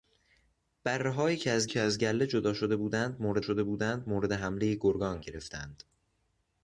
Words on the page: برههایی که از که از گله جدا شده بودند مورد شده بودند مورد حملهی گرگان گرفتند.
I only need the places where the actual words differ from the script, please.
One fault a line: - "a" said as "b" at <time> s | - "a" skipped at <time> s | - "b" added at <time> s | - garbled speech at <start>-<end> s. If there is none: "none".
none